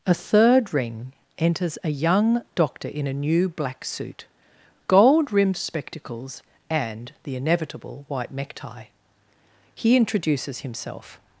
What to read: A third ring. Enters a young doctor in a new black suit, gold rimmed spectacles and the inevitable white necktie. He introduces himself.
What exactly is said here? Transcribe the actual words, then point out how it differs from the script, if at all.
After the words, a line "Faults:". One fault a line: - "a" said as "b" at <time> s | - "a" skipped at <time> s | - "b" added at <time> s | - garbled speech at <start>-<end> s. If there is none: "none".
A third ring. Enters a young doctor in a new black suit, gold rimmed spectacles and the inevitable white necktie. He introduces himself.
Faults:
none